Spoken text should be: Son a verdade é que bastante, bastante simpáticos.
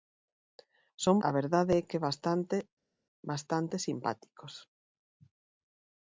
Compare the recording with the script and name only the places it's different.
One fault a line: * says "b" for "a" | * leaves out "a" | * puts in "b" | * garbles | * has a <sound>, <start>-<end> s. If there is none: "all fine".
all fine